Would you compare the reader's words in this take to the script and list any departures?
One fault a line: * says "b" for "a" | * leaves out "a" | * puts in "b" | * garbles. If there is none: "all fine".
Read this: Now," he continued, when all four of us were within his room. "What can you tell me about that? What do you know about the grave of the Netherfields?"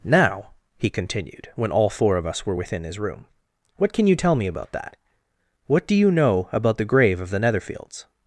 all fine